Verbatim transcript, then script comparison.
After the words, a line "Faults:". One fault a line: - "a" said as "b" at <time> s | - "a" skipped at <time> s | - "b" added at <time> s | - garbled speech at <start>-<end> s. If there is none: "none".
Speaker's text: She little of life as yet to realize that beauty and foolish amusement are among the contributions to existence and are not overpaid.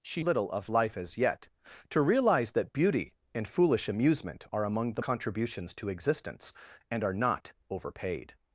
She little of life as yet to realize that beauty and foolish amusement are among the contributions to existence and are not overpaid.
Faults:
none